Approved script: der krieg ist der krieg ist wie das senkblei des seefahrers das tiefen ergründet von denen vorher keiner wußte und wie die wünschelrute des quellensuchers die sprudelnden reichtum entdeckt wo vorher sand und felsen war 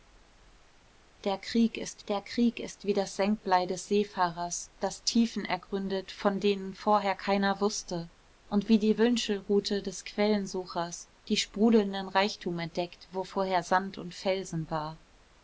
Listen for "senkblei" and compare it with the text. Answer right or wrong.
right